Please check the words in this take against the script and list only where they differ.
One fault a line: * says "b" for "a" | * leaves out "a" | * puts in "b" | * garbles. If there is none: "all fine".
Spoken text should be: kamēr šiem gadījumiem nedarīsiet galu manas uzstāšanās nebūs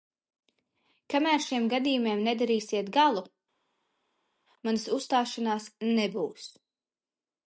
all fine